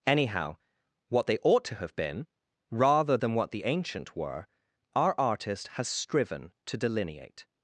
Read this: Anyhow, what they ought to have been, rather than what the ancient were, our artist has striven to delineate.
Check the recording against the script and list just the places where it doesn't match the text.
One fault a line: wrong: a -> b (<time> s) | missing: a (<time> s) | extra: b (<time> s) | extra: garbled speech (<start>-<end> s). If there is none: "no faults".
no faults